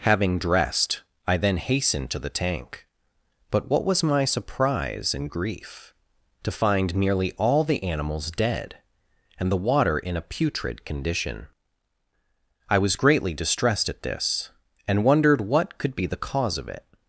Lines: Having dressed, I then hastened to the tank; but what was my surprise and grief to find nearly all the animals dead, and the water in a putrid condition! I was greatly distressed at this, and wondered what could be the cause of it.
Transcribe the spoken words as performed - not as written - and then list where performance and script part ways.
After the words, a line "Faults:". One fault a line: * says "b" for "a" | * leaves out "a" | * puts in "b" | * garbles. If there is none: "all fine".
Having dressed, I then hastened to the tank; but what was my surprise and grief to find nearly all the animals dead, and the water in a putrid condition! I was greatly distressed at this, and wondered what could be the cause of it.
Faults:
all fine